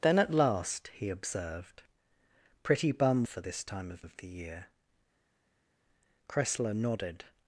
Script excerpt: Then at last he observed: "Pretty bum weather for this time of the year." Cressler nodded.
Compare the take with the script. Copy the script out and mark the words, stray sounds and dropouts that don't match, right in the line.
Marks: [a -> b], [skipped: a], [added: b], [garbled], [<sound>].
Then at last he observed: "Pretty bum [skipped: weather] for this time of [added: of] the year." Cressler nodded.